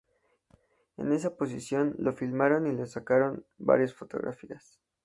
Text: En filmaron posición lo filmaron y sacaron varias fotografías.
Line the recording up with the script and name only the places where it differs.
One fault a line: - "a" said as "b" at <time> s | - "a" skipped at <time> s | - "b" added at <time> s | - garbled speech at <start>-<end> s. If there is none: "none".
- "filmaron" said as "esa" at 1.1 s
- "le" added at 2.7 s